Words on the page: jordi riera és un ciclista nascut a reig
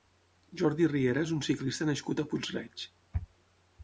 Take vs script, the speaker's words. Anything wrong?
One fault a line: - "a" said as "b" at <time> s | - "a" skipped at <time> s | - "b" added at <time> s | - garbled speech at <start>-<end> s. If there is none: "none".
- "puig" added at 2.3 s